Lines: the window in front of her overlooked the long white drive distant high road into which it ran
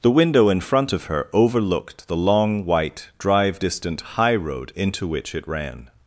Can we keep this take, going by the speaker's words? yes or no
yes